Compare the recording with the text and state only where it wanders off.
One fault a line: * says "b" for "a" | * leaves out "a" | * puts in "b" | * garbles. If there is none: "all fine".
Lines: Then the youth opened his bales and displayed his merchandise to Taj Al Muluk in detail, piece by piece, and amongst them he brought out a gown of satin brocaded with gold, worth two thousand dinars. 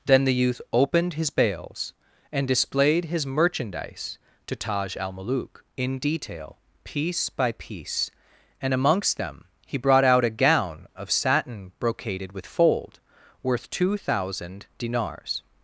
* says "fold" for "gold"